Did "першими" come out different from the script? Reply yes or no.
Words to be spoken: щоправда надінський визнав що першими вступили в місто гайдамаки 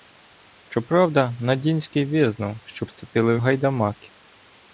yes